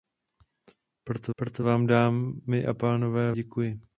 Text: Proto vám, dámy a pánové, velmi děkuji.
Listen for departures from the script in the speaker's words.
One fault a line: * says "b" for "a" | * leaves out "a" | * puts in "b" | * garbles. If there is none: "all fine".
* puts in "proto"
* leaves out "velmi"